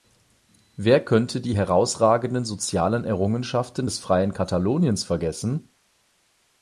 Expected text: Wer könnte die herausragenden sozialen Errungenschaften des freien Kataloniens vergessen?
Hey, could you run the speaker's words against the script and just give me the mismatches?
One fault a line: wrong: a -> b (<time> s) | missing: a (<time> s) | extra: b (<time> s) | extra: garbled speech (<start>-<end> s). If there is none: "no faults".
no faults